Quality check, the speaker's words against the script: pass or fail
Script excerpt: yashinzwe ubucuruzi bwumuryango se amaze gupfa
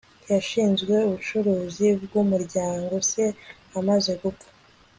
pass